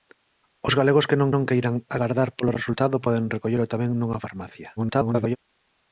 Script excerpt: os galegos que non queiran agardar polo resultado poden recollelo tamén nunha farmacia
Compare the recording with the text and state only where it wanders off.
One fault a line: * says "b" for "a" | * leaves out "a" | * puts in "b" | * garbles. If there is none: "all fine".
* puts in "non"
* garbles